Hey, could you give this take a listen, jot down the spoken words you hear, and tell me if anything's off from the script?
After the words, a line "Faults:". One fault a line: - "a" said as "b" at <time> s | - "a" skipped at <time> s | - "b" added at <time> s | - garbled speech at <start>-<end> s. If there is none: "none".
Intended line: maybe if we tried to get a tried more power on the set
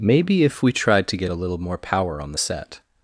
maybe if we tried to get a little more power on the set
Faults:
- "tried" said as "little" at 1.3 s